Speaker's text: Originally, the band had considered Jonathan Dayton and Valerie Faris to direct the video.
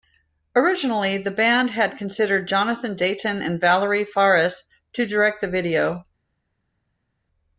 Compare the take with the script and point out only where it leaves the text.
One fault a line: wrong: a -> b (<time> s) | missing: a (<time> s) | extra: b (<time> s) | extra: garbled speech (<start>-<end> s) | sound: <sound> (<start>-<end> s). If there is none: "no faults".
no faults